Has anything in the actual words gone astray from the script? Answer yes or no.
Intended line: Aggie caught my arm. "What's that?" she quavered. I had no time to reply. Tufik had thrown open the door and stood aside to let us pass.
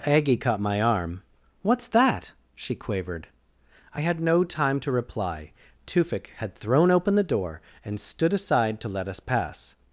no